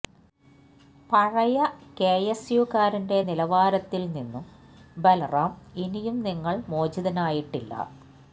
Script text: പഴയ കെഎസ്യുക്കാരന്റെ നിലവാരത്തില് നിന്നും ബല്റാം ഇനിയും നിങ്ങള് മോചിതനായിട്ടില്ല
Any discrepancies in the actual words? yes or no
no